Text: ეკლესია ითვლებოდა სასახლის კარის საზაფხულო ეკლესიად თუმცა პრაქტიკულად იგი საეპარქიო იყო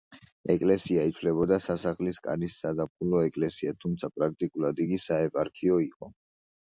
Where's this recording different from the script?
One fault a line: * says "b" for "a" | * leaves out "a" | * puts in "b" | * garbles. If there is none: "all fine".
all fine